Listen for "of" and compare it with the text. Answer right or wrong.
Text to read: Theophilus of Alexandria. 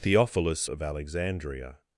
right